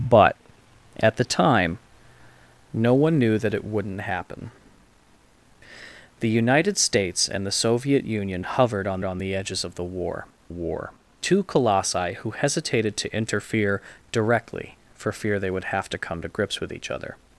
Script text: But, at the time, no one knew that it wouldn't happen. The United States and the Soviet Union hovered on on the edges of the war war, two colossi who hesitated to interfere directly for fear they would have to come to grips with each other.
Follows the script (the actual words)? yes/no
yes